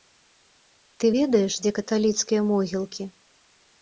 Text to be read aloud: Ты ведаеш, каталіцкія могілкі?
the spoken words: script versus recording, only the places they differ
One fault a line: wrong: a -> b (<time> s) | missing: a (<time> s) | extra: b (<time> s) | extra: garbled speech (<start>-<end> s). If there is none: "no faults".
extra: дзе (1.6 s)